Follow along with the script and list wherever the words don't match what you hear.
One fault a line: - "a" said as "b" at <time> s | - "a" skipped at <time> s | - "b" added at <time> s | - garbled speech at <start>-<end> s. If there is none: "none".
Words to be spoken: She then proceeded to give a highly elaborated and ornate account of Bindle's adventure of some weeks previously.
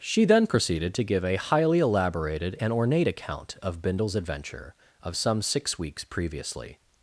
- "six" added at 5.4 s